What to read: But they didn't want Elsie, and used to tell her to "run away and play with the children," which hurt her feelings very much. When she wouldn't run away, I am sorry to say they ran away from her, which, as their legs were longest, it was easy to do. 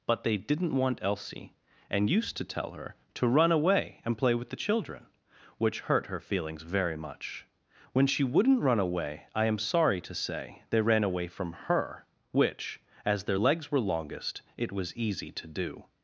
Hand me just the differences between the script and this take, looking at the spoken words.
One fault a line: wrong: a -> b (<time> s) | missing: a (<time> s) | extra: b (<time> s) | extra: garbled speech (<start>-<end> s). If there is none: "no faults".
no faults